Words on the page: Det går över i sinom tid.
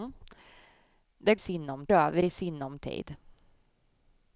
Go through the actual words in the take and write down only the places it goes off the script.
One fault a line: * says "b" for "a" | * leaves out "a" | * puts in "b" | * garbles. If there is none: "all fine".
* says "sinom" for "går"